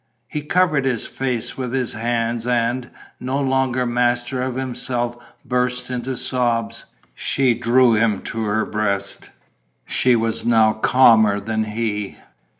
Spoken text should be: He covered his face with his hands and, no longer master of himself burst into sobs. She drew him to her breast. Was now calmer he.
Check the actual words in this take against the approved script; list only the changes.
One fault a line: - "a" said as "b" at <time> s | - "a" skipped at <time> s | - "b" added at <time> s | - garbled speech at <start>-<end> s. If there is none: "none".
- "She" added at 9.8 s
- "than" added at 11.4 s